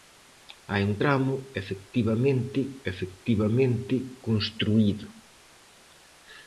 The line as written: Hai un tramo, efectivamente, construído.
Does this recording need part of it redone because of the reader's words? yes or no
yes